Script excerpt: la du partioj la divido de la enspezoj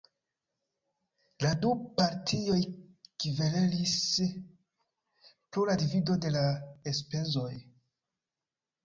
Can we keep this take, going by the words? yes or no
no